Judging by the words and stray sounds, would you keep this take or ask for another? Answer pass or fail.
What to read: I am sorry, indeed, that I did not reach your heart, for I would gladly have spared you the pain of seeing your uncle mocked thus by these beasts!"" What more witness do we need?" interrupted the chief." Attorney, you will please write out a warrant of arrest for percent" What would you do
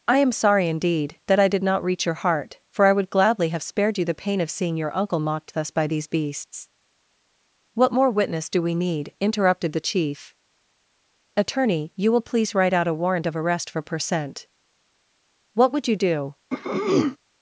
fail